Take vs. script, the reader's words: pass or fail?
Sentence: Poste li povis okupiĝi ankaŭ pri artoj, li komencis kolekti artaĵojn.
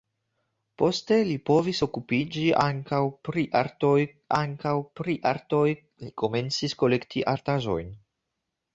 fail